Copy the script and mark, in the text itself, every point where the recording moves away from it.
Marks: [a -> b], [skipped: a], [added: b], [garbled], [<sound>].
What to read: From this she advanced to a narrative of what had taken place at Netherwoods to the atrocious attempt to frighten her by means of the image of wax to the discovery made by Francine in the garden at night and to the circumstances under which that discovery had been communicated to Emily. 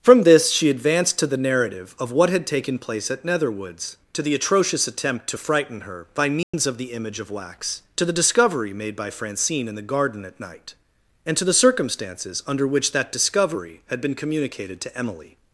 From this she advanced to [a -> the] narrative of what had taken place at Netherwoods to the atrocious attempt to frighten her by means [dropout] of the image of wax to the discovery made by Francine in the garden at night and to the circumstances under which that discovery had been communicated to Emily.